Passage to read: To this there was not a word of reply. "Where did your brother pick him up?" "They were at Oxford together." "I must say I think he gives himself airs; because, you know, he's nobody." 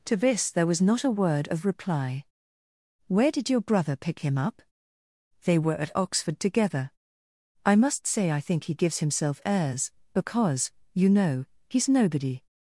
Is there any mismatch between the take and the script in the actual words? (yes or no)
no